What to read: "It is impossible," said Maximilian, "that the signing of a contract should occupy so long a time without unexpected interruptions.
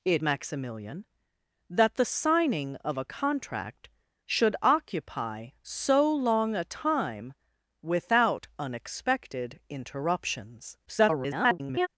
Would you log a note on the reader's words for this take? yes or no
yes